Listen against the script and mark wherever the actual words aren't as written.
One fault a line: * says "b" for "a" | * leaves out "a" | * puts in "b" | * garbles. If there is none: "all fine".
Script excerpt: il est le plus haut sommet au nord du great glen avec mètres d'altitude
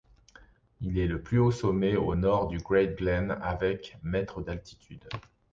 all fine